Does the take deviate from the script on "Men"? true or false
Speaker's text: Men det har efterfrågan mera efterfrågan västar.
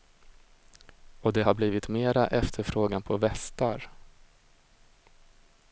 true